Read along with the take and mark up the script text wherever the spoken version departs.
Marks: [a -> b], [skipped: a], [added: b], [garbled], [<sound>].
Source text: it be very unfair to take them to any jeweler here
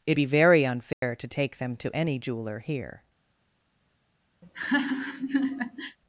it be very unfair [dropout] to take them to any jeweler here [laugh]